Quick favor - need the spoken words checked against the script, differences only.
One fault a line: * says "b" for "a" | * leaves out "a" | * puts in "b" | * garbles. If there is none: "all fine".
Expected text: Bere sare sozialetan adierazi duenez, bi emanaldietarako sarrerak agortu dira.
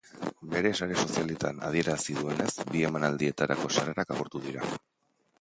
all fine